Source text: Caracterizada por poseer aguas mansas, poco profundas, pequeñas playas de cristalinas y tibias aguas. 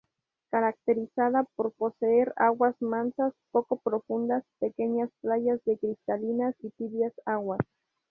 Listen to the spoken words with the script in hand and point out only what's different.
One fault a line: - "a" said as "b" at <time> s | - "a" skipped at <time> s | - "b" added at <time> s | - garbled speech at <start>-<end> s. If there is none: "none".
none